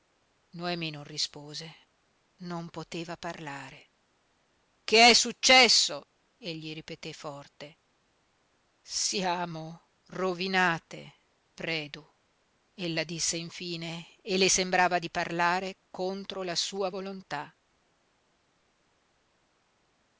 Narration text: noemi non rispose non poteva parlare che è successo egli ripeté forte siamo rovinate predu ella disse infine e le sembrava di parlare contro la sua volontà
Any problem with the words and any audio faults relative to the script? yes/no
no